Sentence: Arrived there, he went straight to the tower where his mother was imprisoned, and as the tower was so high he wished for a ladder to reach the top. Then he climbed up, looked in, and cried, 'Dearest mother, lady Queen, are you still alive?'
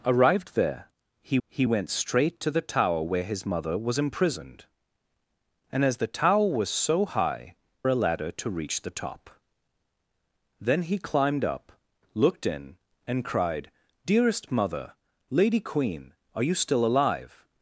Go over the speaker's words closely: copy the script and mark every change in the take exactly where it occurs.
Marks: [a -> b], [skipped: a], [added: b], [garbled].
Arrived there, he [added: he] went straight to the tower where his mother was imprisoned, and as the tower was so high [skipped: he wished for] a ladder to reach the top. Then he climbed up, looked in, and cried, 'Dearest mother, lady Queen, are you still alive?'